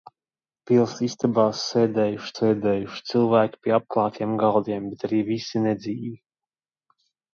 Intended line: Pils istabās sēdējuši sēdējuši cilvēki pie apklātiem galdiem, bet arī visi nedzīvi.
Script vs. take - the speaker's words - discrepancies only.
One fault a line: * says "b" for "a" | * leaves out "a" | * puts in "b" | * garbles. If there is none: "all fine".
all fine